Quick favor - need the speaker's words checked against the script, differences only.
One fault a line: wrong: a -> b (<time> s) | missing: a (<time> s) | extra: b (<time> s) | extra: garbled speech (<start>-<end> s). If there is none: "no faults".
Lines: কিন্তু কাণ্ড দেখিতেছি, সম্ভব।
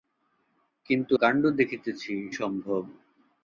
no faults